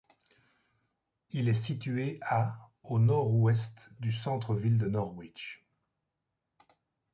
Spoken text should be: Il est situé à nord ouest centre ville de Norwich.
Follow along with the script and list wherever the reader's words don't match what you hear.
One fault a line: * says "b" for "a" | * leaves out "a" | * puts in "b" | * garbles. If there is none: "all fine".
* puts in "au"
* puts in "du"